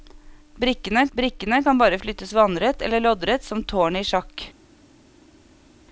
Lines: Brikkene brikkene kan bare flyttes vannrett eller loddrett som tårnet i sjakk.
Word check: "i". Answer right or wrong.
right